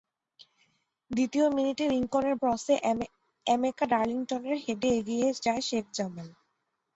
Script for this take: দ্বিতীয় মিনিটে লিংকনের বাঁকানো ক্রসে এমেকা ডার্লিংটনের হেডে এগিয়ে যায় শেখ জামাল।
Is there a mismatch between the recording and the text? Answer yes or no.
yes